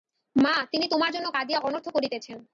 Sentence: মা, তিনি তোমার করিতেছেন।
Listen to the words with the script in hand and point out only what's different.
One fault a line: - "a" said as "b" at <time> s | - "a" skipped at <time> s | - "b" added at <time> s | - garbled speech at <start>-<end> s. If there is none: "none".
- "জন্য কাঁদিয়া অনর্থ" added at 1.1 s